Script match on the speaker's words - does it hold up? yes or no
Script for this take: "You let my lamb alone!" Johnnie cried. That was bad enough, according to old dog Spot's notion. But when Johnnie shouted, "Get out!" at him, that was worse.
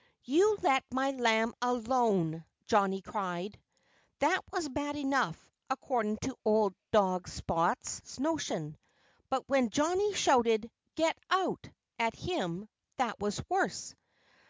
yes